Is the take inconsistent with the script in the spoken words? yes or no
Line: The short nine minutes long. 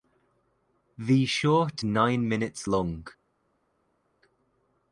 no